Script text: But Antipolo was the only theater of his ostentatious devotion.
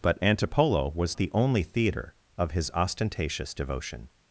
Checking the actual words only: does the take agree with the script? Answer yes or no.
yes